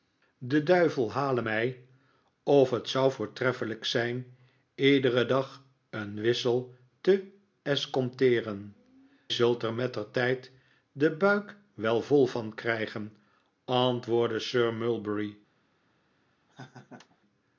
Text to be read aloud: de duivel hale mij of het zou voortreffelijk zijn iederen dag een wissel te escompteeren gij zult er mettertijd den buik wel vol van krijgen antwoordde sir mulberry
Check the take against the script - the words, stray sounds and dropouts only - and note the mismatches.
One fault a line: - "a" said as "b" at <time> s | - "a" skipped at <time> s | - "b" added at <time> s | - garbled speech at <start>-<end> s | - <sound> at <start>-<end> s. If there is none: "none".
- "gij" skipped at 8.7 s
- laugh at 16.5-17.2 s